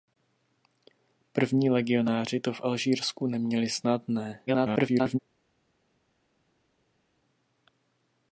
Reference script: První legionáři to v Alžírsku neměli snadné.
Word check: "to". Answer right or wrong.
right